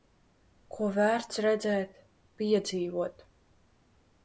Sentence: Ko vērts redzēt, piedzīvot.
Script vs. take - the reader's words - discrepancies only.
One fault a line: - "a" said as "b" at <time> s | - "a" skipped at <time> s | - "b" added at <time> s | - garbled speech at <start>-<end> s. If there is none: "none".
none